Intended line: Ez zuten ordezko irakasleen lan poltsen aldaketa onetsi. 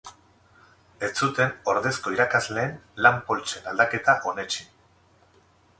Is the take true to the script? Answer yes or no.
yes